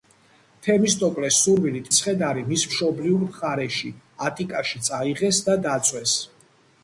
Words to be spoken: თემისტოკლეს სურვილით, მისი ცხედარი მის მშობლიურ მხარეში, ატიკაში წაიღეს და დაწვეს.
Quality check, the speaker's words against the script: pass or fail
fail